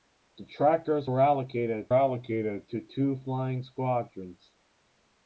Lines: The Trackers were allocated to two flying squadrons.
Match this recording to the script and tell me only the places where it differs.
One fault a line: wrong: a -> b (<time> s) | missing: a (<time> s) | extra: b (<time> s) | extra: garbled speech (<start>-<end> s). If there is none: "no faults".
extra: allocated (1.9 s)